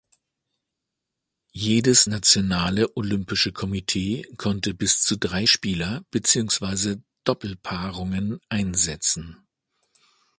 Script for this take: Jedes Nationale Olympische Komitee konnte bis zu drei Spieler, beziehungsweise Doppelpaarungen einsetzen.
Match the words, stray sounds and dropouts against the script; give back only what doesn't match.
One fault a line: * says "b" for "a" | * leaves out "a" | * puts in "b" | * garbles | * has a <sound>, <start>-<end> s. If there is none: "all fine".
all fine